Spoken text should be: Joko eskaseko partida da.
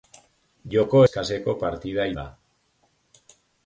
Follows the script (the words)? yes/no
yes